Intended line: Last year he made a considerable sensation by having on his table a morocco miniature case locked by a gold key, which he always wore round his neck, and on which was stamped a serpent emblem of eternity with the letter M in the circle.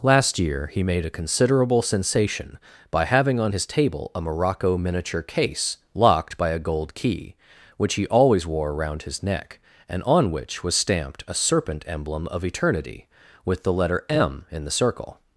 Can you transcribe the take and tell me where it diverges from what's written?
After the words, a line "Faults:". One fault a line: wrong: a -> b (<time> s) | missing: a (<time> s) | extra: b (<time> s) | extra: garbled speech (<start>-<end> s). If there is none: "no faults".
Last year he made a considerable sensation by having on his table a morocco miniature case locked by a gold key, which he always wore around his neck, and on which was stamped a serpent emblem of eternity with the letter M in the circle.
Faults:
wrong: round -> around (8.7 s)